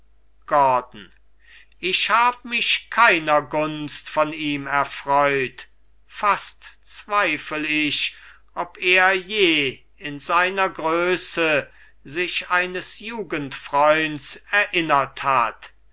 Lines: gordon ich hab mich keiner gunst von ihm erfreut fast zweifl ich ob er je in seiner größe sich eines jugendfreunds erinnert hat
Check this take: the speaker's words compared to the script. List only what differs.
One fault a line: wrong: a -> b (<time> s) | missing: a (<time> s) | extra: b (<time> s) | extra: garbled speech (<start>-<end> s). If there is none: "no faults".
no faults